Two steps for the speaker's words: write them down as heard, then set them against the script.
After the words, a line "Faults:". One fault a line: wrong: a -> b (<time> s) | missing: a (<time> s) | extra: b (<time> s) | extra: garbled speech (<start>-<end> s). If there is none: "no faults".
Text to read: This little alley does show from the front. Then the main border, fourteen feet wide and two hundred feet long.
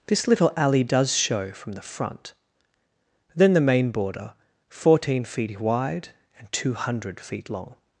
This little alley does show from the front. Then the main border, fourteen feet wide and two hundred feet long.
Faults:
no faults